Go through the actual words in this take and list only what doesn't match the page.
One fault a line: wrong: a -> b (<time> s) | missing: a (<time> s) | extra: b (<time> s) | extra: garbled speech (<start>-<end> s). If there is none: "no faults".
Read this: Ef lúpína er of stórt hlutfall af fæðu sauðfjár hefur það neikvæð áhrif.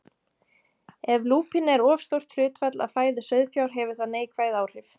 no faults